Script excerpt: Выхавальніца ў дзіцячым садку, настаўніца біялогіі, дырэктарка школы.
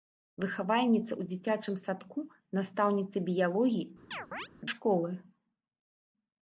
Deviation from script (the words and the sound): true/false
true